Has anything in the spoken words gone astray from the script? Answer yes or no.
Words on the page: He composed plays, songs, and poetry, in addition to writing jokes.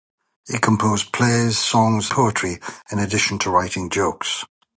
yes